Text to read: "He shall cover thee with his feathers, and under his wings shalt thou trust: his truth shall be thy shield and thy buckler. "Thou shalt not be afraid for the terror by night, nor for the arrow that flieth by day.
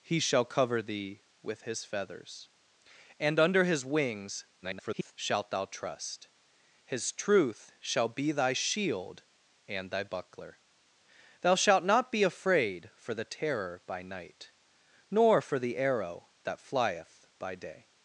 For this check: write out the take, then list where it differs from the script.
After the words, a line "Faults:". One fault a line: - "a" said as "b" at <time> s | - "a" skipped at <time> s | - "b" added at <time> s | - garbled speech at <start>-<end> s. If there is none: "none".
"He shall cover thee with his feathers, and under his wings [garbled] shalt thou trust: his truth shall be thy shield and thy buckler. "Thou shalt not be afraid for the terror by night, nor for the arrow that flieth by day.
Faults:
- garbled speech at 4.6-5.1 s